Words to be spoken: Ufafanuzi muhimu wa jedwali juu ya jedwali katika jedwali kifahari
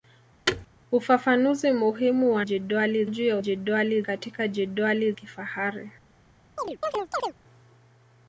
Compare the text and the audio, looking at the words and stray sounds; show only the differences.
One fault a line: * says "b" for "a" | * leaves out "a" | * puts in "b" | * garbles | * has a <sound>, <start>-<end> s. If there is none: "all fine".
* has a thud, 0.5-0.7 s
* has a chirp, 6.6-7.3 s